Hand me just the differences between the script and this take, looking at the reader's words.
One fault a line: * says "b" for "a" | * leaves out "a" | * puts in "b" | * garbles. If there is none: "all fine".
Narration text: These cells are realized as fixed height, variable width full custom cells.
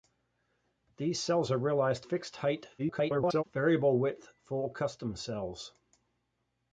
* leaves out "as"
* garbles